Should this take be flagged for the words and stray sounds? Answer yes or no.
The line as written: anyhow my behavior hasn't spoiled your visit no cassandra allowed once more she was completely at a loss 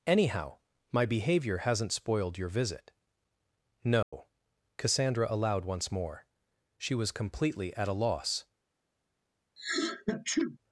yes